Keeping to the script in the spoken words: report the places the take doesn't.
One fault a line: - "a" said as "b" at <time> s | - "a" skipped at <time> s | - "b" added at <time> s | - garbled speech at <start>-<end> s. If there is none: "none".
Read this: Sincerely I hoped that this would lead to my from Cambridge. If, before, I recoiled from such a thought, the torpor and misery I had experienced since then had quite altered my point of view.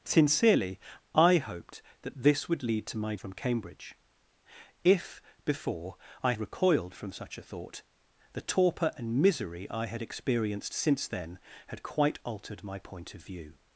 none